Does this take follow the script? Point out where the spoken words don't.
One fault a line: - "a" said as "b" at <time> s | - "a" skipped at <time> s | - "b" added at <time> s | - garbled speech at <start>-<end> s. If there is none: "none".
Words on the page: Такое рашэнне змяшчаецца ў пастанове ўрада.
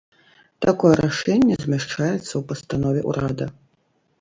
none